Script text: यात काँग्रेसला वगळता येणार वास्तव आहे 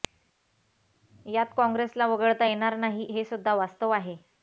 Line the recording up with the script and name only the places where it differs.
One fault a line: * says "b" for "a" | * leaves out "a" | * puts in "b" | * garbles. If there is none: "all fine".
* puts in "नाही हे सुद्धा"